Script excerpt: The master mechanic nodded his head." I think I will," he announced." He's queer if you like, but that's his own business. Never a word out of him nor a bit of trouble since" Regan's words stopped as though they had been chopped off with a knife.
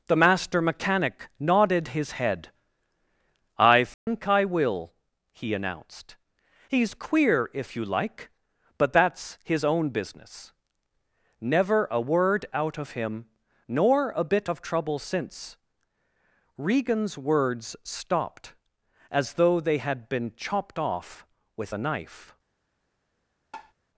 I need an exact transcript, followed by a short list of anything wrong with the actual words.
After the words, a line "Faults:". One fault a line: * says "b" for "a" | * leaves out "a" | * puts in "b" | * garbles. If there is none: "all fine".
The master mechanic nodded his head." I think I will," he announced." He's queer if you like, but that's his own business. Never a word out of him nor a bit of trouble since" Regan's words stopped as though they had been chopped off with a knife.
Faults:
all fine